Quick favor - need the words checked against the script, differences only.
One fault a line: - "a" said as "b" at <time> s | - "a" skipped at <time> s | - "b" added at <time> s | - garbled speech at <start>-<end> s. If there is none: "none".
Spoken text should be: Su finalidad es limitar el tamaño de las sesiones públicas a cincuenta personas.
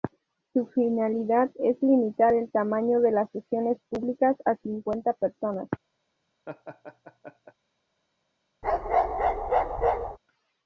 none